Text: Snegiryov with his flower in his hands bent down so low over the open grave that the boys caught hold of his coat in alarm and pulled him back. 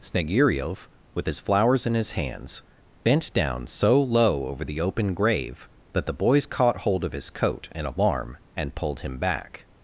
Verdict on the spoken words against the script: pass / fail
fail